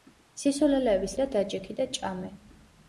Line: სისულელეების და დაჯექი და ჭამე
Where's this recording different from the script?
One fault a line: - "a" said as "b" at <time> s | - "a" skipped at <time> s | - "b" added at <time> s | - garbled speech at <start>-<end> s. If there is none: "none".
none